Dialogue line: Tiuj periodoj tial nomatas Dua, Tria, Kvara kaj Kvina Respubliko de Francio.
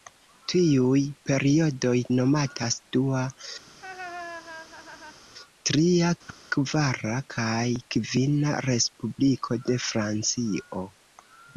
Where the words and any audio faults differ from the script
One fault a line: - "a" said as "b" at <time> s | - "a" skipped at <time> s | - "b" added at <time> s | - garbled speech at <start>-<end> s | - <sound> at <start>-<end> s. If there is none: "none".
- "tial" skipped at 1.9 s
- laugh at 3.7-5.2 s
- whoosh at 6.3-6.4 s